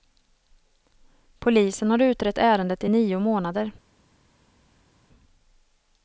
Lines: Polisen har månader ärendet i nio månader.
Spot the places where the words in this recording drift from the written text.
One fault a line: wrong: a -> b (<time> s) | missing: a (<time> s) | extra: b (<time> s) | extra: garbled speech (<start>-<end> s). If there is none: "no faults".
wrong: månader -> utrett (2.0 s)